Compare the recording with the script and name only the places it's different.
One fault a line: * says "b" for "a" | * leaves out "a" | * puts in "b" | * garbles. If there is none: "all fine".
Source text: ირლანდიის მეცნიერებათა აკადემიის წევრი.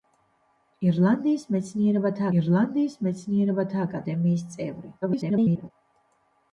* puts in "ირლანდიის მეცნიერებათა"
* garbles